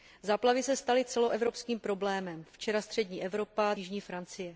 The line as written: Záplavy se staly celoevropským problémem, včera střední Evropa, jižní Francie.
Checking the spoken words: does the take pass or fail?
pass